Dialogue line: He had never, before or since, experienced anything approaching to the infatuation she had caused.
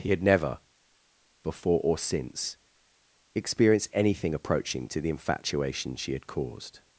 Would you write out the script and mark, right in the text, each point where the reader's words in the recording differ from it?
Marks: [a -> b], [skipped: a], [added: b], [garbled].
He had never, before or since, experienced anything approaching to the infatuation she had caused.